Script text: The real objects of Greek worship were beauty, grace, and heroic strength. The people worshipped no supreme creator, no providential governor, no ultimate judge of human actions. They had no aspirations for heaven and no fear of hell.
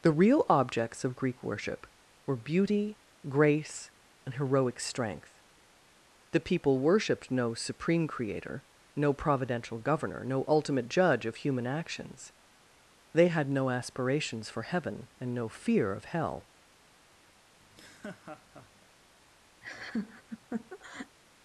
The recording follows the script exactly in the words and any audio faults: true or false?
false